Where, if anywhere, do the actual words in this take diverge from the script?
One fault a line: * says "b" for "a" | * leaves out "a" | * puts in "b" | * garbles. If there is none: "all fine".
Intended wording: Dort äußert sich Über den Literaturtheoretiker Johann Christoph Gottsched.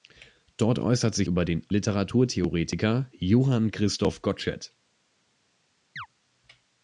all fine